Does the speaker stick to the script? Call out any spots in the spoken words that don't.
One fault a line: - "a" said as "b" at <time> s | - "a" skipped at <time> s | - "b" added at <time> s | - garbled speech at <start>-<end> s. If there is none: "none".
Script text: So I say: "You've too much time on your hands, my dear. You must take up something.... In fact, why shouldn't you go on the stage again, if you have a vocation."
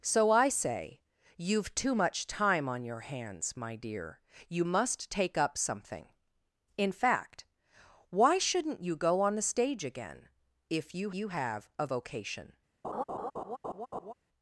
- "you" added at 11.1 s